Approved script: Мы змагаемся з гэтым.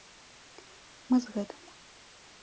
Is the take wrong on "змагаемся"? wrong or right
wrong